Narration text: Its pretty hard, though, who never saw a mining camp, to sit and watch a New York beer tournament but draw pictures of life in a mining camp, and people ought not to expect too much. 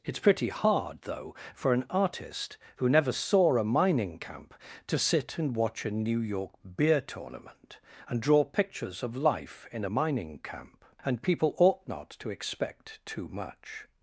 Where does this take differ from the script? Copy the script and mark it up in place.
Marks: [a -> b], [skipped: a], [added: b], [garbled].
Its pretty hard, though, [added: for an artist] who never saw a mining camp, to sit and watch a New York beer tournament [but -> and] draw pictures of life in a mining camp, and people ought not to expect too much.